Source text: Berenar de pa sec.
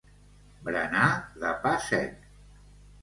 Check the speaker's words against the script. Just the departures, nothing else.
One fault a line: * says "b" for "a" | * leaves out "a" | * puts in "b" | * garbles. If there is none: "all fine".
all fine